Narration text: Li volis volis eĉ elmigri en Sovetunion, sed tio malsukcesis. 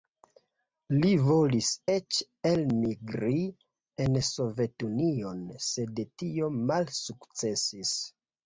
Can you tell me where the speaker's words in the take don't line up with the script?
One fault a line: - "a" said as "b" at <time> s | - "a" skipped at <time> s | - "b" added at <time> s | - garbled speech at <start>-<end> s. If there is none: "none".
- "volis" skipped at 1.7 s